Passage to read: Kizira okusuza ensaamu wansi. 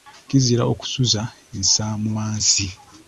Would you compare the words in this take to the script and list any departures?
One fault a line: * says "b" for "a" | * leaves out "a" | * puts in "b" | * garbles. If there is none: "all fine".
all fine